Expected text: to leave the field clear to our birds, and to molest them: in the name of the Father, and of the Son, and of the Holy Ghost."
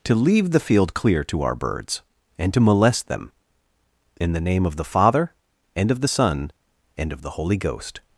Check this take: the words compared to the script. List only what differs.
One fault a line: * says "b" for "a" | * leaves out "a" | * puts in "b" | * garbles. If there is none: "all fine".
all fine